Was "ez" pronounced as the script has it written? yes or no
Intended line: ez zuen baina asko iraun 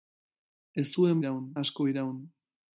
yes